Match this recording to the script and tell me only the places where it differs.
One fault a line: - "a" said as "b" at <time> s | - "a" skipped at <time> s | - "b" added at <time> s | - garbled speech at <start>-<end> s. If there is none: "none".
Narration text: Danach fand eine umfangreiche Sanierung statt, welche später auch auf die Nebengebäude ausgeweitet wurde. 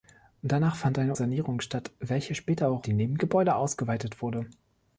- "umfangreiche" skipped at 1.1 s
- "auf" skipped at 2.9 s